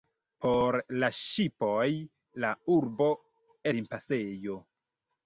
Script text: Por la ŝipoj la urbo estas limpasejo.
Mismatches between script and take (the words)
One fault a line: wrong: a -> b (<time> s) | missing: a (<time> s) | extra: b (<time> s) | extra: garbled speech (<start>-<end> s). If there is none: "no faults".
missing: estas (3.1 s)